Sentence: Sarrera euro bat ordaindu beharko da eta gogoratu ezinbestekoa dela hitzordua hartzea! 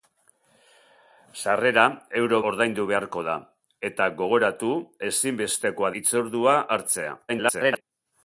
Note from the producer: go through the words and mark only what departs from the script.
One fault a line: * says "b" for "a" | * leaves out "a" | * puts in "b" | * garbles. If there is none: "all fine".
* leaves out "bat"
* leaves out "dela"
* garbles